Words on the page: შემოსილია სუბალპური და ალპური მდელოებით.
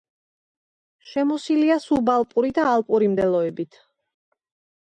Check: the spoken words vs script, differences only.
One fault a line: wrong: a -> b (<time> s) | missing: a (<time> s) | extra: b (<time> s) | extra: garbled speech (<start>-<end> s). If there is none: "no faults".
no faults